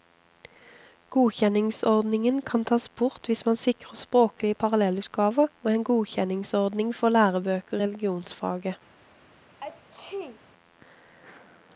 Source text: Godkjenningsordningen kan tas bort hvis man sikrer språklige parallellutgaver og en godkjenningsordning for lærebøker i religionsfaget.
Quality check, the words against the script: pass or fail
fail